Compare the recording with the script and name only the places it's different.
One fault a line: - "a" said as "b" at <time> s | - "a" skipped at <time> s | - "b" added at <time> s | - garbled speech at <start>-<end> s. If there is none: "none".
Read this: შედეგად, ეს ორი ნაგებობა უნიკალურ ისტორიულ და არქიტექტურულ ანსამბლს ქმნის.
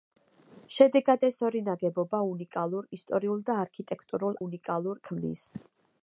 - "ანსამბლს" said as "უნიკალურ" at 4.4 s